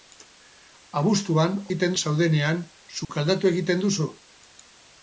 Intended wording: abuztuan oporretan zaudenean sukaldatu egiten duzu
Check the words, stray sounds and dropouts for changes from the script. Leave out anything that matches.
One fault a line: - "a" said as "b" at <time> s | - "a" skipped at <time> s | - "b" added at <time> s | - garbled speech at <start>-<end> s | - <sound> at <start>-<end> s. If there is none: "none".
- "oporretan" said as "egiten" at 1.7 s
- dropout at 3.0-3.1 s